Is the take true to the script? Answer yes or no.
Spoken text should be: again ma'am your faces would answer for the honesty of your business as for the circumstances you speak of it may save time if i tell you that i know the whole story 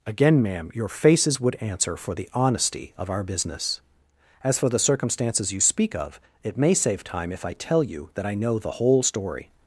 no